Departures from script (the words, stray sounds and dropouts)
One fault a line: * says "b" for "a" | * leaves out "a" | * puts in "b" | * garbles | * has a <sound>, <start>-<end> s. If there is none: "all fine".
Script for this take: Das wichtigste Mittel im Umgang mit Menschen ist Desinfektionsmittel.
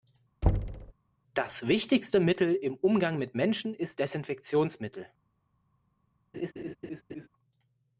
* has a thud, 0.4-0.9 s
* has a laugh, 6.3-7.3 s